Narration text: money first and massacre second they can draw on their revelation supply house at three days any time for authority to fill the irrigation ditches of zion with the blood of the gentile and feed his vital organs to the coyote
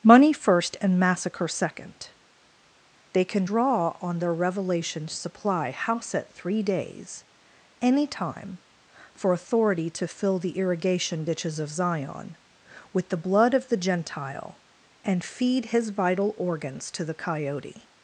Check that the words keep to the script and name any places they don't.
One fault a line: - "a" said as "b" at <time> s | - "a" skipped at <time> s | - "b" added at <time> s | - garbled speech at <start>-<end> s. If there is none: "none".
none